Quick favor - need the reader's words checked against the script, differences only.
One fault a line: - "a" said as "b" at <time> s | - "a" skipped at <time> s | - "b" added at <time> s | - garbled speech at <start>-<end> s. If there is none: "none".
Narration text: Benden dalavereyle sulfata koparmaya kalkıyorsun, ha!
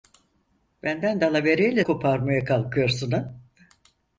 - "sulfata" skipped at 1.8 s